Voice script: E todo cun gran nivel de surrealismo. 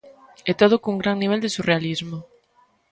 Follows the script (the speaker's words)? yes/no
yes